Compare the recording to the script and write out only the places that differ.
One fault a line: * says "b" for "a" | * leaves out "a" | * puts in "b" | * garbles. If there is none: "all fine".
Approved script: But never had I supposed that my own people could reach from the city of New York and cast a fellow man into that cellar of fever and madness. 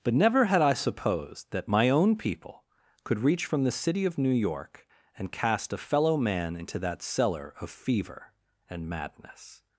all fine